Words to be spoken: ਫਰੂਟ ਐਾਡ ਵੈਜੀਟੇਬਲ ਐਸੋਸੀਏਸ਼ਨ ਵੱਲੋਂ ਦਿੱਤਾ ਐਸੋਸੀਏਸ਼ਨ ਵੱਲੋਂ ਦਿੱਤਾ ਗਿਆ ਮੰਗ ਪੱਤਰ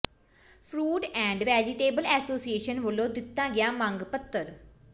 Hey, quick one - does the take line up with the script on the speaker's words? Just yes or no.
no